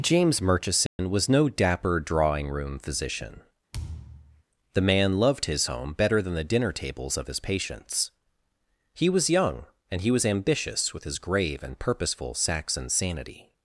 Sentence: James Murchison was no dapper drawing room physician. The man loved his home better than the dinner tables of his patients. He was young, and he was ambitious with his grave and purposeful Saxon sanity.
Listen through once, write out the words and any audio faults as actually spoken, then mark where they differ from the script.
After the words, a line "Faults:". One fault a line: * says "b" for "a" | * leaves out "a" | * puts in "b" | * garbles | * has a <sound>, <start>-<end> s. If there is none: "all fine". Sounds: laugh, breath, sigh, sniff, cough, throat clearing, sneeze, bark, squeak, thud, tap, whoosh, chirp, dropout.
James Murchison was no dapper drawing room physician. The man loved his home better than the dinner tables of his patients. He was young, and he was ambitious with his grave and purposeful Saxon sanity.
Faults:
* has a dropout, 0.9-1.0 s
* has a thud, 3.7-4.4 s